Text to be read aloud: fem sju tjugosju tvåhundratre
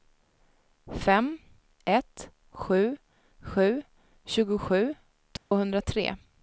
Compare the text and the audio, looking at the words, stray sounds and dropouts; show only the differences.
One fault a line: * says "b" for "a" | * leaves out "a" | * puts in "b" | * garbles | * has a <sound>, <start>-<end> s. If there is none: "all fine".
* puts in "ett sju"
* has a dropout, 5.4-5.5 s